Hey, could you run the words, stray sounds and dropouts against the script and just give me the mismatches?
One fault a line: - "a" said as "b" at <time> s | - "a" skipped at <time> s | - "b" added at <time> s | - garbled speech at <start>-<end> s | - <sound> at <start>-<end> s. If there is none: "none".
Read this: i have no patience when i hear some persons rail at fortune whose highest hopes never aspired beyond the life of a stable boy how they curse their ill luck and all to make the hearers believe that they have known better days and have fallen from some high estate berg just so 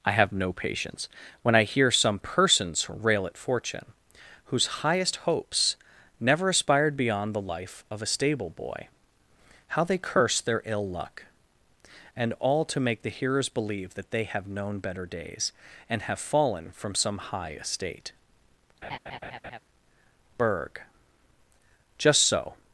- laugh at 18.8-19.6 s